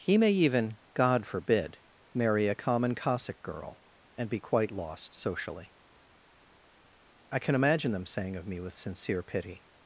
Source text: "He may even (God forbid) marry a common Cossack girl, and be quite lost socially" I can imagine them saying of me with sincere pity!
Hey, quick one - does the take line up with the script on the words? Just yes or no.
yes